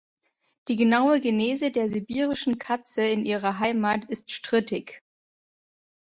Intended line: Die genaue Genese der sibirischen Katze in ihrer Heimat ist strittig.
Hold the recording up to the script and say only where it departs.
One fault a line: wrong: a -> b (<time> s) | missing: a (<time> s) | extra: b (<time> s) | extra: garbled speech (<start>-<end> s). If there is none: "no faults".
no faults